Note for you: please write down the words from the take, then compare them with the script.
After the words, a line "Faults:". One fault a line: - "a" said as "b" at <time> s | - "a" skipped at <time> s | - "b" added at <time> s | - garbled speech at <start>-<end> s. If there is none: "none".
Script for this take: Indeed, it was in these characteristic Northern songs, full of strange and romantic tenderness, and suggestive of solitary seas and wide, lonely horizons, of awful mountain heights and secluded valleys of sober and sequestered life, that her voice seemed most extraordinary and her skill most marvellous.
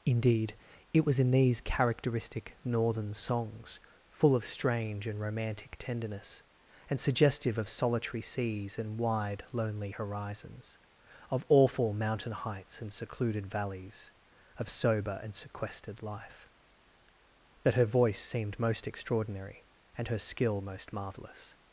Indeed, it was in these characteristic Northern songs, full of strange and romantic tenderness, and suggestive of solitary seas and wide, lonely horizons, of awful mountain heights and secluded valleys of sober and sequestered life, that her voice seemed most extraordinary and her skill most marvellous.
Faults:
none